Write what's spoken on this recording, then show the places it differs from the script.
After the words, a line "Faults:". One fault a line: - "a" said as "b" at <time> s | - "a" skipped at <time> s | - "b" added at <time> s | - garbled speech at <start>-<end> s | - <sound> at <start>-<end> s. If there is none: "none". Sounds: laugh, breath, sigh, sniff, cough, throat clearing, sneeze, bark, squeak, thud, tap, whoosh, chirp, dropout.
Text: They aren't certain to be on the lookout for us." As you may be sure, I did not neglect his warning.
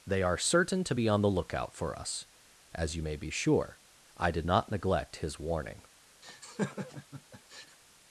They are certain to be on the lookout for us." As you may be sure, I did not neglect his warning.
Faults:
- "aren't" said as "are" at 0.2 s
- laugh at 6.2-7.8 s